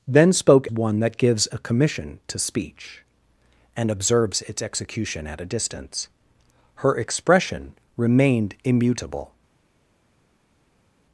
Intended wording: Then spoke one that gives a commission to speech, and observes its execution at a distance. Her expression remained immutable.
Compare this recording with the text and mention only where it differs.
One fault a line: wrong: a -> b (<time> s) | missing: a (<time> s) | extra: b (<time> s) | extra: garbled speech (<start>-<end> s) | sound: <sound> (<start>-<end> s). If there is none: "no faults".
no faults